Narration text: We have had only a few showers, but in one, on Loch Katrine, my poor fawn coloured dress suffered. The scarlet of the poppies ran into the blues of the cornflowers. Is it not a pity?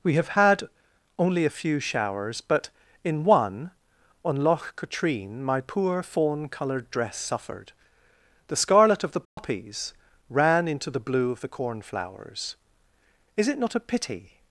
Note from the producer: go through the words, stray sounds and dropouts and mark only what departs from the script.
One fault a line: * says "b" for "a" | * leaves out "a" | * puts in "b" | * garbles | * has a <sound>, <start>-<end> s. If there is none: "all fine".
* has a dropout, 9.3-9.4 s
* says "blue" for "blues"